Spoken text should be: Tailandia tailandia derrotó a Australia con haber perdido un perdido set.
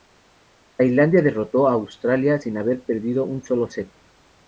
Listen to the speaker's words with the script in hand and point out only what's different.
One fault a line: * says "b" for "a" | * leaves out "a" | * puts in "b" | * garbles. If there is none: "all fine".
* leaves out "tailandia"
* says "sin" for "con"
* says "solo" for "perdido"